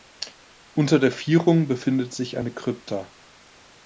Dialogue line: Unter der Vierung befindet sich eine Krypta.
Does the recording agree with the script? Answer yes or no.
yes